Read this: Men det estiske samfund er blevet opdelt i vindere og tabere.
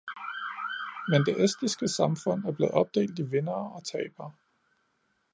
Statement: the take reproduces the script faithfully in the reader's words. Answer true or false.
true